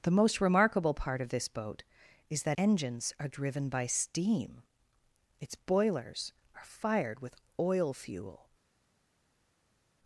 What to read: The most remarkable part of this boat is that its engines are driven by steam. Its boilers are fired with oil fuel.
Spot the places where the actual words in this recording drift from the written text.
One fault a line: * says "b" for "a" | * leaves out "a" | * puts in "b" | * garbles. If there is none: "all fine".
* leaves out "its"